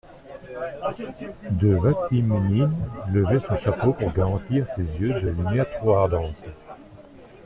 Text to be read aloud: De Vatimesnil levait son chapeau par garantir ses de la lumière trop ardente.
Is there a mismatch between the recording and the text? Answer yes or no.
yes